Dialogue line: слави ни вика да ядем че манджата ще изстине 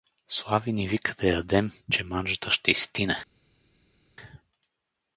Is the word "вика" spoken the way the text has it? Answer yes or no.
yes